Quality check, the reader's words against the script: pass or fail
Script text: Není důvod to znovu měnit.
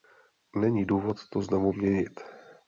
pass